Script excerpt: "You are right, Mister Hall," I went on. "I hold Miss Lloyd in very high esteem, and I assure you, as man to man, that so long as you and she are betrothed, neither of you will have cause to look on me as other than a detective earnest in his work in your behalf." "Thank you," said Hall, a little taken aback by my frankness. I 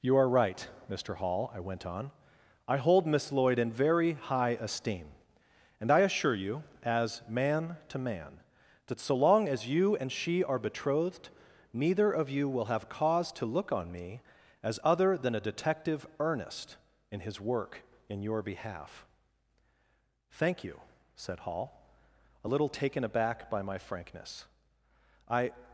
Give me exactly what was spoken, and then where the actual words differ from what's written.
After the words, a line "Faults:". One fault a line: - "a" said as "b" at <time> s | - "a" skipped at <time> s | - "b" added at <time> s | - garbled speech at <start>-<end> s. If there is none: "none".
"You are right, Mister Hall," I went on. "I hold Miss Lloyd in very high esteem, and I assure you, as man to man, that so long as you and she are betrothed, neither of you will have cause to look on me as other than a detective earnest in his work in your behalf." "Thank you," said Hall, a little taken aback by my frankness. I
Faults:
none